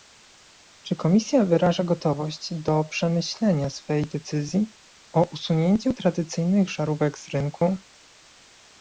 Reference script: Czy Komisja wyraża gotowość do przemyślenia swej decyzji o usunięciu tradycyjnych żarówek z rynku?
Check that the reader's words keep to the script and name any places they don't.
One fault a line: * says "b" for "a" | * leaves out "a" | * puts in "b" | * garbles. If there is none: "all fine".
all fine